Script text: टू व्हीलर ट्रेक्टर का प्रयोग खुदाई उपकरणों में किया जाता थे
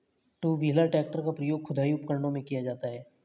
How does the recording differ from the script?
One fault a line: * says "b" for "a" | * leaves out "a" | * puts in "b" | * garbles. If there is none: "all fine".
* says "हैं" for "थे"